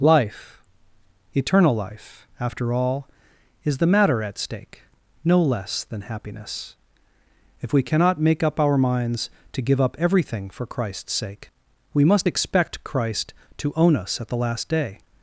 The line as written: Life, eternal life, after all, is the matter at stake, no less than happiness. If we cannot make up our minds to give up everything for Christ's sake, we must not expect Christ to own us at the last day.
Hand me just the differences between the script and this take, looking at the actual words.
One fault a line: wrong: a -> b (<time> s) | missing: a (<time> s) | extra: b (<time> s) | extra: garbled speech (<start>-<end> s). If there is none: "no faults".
missing: not (12.3 s)